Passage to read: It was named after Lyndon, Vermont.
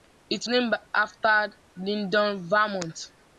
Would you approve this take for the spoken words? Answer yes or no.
no